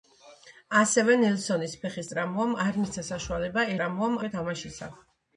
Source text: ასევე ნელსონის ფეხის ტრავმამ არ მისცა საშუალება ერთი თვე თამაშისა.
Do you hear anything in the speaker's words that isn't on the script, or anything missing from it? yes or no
yes